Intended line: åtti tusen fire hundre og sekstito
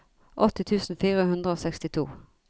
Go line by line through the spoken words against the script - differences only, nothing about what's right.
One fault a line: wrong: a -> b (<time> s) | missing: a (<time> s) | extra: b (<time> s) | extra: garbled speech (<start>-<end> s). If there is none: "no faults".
no faults